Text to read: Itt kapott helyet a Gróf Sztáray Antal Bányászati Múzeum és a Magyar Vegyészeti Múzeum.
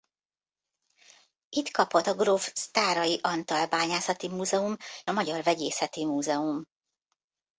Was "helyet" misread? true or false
true